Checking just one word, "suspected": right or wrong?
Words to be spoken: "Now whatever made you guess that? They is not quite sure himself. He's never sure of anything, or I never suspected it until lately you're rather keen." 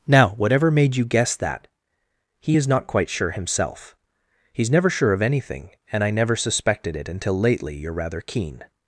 right